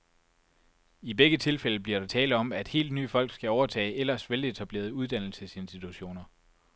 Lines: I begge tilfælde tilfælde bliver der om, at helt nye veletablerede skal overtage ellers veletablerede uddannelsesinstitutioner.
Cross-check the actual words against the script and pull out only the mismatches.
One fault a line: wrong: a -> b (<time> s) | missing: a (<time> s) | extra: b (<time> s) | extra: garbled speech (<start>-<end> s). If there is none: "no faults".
missing: tilfælde (1.8 s)
extra: tale (2.0 s)
wrong: veletablerede -> folk (3.1 s)